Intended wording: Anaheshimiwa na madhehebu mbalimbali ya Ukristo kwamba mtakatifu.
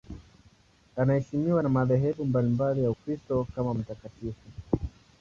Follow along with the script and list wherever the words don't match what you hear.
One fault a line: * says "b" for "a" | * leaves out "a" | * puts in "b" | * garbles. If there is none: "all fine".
* says "kama" for "kwamba"